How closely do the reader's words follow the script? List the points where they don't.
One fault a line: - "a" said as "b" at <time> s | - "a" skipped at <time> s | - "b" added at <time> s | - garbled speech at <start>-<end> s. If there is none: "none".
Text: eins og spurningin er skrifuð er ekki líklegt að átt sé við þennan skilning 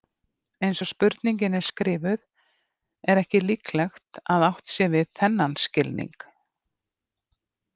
none